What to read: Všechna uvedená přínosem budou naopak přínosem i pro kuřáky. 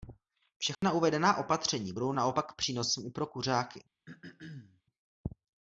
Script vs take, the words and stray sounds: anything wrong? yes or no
yes